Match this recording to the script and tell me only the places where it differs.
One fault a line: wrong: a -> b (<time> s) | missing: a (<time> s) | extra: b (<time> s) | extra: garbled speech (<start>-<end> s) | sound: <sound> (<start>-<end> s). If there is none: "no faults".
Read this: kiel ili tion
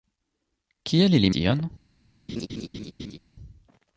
sound: laugh (2.3-3.2 s)